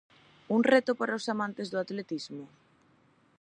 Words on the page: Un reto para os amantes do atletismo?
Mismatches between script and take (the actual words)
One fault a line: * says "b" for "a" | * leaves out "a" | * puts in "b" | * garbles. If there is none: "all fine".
all fine